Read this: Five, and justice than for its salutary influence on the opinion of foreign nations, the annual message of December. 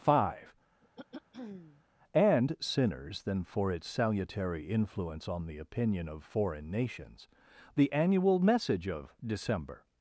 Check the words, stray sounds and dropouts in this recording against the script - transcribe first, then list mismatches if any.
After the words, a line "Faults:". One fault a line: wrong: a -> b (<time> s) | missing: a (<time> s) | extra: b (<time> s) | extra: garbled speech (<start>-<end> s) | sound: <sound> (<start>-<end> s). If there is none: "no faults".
Five, and sinners than for its salutary influence on the opinion of foreign nations, the annual message of December.
Faults:
sound: throat clearing (0.8-1.8 s)
wrong: justice -> sinners (2.6 s)